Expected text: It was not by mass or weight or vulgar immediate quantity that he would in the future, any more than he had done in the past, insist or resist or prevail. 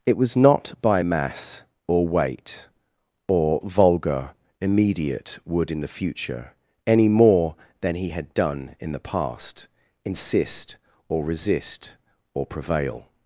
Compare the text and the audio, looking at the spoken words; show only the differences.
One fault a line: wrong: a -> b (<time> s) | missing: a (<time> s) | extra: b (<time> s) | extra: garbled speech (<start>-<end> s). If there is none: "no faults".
missing: quantity that he (5.4 s)